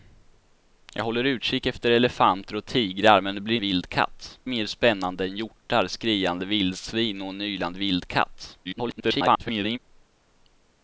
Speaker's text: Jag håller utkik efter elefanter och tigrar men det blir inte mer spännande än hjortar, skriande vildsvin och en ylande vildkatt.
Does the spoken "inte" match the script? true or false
false